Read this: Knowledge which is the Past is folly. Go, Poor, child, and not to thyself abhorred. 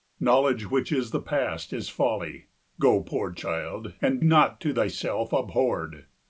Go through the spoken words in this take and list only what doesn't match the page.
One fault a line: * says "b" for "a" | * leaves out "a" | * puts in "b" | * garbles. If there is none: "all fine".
all fine